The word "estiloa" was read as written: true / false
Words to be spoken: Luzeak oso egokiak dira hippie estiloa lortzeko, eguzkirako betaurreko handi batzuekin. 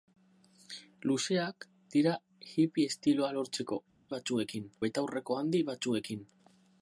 true